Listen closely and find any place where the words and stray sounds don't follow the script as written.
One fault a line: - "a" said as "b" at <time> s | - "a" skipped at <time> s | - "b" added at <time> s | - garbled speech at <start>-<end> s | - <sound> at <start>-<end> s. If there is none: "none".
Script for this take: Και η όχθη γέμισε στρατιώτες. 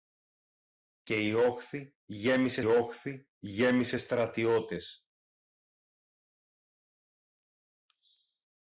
- "όχθη γέμισε" added at 2.6 s